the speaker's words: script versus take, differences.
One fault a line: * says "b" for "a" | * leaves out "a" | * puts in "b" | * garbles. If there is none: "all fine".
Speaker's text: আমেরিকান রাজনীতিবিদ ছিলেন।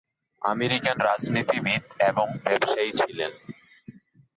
* puts in "এবং ব্যবসায়ী"